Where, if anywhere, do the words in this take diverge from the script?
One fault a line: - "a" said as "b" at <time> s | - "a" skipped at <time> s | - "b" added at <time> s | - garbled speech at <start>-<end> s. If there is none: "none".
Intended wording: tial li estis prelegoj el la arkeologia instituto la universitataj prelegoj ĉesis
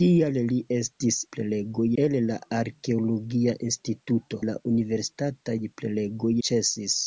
none